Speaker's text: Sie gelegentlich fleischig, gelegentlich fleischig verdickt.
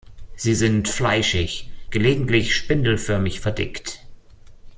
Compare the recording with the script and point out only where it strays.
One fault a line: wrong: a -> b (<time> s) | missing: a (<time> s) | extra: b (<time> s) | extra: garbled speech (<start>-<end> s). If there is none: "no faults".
wrong: gelegentlich -> sind (0.6 s)
wrong: fleischig -> spindelförmig (2.5 s)